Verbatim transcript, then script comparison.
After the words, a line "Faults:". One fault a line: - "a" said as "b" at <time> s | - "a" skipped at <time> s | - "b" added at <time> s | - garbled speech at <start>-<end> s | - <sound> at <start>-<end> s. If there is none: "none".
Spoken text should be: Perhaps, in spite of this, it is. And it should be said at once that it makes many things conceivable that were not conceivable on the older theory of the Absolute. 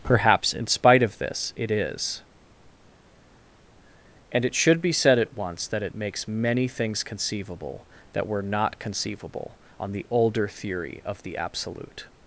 Perhaps, in spite of this, it is. And it should be said at once that it makes many things conceivable that were not conceivable on the older theory of the Absolute.
Faults:
none